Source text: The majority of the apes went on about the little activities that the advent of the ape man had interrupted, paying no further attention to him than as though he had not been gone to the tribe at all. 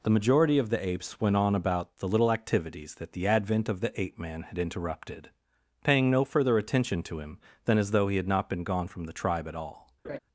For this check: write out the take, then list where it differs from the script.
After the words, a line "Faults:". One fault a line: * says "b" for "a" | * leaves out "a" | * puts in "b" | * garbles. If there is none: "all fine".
The majority of the apes went on about the little activities that the advent of the ape man had interrupted, paying no further attention to him than as though he had not been gone from the tribe at all.
Faults:
* says "from" for "to"